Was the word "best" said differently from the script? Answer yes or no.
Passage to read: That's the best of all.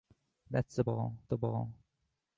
yes